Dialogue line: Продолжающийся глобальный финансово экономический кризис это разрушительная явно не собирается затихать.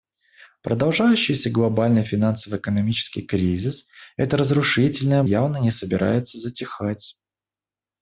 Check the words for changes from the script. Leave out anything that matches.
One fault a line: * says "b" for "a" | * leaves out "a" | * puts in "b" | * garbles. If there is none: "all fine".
all fine